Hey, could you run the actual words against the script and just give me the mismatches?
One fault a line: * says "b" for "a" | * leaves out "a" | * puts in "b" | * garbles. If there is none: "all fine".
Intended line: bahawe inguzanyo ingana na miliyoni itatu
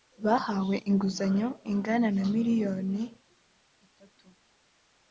all fine